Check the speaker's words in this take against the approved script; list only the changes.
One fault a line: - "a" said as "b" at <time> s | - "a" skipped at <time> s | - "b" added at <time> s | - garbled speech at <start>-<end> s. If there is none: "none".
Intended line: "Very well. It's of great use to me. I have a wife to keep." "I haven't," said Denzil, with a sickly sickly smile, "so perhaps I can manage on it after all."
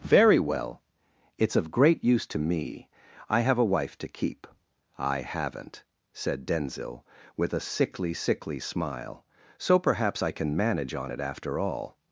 none